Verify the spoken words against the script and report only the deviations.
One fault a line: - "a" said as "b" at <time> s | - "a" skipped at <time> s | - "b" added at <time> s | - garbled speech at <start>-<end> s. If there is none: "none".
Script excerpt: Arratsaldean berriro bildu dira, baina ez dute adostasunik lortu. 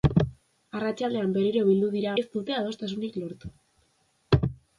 - "baina" skipped at 2.1 s